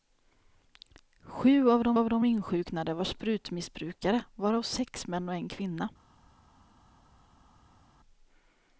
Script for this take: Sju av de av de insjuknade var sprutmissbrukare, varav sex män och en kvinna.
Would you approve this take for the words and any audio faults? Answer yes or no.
yes